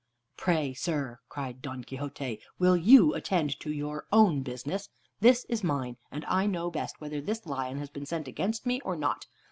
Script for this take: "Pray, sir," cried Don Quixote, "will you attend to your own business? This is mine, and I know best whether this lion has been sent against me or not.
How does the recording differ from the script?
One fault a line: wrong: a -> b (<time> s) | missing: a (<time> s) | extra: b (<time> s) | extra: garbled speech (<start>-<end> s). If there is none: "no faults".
no faults